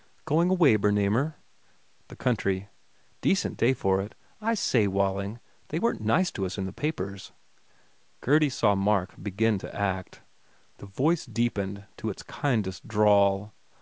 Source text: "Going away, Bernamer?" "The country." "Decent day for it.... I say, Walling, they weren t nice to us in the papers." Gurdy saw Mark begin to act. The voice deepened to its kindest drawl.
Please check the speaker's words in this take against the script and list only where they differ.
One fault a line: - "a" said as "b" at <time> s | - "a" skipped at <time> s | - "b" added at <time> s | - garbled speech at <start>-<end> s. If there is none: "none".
none